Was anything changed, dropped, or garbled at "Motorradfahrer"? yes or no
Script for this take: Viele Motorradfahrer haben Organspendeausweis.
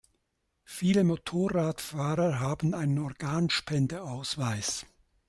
no